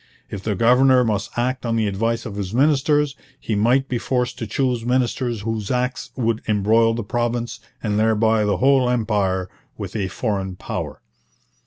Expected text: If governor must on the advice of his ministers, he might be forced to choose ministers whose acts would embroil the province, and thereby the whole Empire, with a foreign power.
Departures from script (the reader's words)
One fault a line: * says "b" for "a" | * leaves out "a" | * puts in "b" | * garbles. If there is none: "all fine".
* puts in "the"
* puts in "act"